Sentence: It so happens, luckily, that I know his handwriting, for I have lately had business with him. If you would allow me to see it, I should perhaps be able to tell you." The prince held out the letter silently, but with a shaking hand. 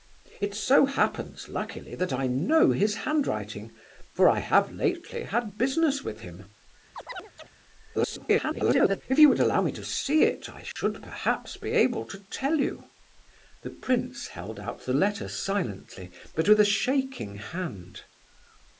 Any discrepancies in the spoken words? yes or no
yes